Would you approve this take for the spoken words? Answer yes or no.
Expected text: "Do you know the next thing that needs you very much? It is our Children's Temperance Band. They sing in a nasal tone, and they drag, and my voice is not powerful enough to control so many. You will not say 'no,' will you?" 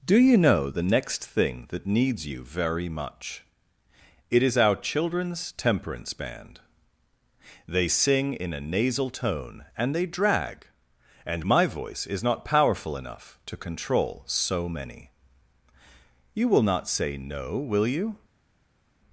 yes